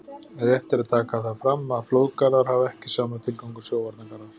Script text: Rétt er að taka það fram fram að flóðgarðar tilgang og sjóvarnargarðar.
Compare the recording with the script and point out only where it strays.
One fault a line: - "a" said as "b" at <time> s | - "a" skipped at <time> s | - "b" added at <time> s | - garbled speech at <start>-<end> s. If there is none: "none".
- "fram" skipped at 1.8 s
- "hafa ekki sama" added at 2.5 s